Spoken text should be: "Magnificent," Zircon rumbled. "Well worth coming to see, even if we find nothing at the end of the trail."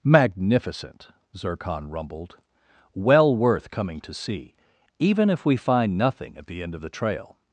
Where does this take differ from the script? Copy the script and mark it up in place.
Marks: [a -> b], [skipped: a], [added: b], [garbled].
"Magnificent," Zircon rumbled. "Well worth coming to see, even if we find nothing at the end of the trail."